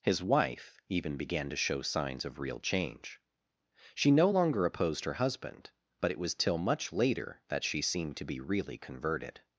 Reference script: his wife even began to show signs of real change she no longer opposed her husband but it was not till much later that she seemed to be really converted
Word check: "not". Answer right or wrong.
wrong